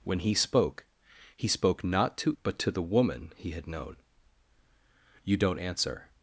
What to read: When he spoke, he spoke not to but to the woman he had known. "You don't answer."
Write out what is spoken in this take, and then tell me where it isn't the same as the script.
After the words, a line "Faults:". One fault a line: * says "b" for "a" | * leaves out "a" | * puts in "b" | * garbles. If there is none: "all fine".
When he spoke, he spoke not to but to the woman he had known. "You don't answer."
Faults:
all fine